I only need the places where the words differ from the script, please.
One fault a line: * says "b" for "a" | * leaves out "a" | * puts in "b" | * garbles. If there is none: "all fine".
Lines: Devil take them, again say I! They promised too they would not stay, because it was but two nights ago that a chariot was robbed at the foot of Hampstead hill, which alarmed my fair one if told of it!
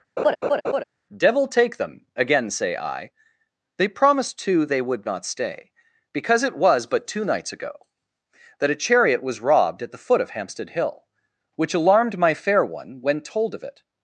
* says "when" for "if"